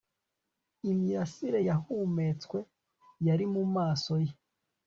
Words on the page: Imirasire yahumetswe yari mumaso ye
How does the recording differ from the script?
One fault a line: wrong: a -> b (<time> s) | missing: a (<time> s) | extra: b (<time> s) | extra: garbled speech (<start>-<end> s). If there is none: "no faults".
no faults